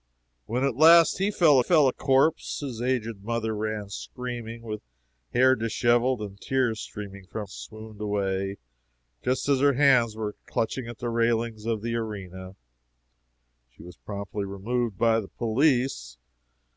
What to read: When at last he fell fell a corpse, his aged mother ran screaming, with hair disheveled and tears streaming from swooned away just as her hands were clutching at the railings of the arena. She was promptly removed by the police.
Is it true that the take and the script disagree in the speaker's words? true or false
false